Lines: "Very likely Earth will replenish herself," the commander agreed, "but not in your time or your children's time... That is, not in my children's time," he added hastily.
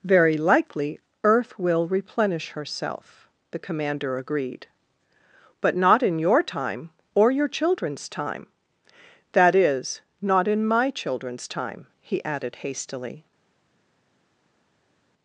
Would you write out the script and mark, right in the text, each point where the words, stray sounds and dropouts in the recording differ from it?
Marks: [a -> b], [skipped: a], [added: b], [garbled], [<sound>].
"Very likely Earth will replenish herself," the commander agreed, "but not in your time or your children's time... That is, not in my children's time," he added hastily.